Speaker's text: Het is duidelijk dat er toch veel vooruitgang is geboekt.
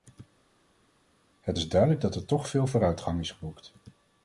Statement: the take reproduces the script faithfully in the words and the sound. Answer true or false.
true